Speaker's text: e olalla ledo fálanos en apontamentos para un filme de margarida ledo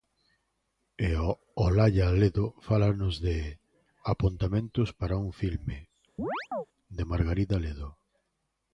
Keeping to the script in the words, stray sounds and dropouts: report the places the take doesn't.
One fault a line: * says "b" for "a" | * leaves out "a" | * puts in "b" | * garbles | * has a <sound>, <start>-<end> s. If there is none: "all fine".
* says "de" for "en"
* has a chirp, 6.2-6.7 s